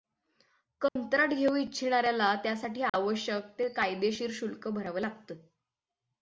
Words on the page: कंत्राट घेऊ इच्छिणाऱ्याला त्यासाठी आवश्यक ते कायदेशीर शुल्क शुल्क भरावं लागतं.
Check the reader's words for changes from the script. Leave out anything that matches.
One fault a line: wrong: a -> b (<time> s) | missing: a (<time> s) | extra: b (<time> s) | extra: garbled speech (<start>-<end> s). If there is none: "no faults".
missing: शुल्क (4.7 s)